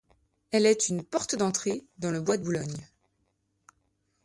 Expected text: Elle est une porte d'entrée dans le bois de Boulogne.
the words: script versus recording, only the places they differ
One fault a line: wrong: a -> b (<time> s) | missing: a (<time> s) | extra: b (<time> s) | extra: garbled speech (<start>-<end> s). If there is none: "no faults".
no faults